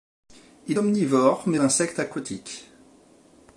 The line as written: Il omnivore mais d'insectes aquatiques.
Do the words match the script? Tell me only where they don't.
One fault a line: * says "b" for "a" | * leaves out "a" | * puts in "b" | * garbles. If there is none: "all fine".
all fine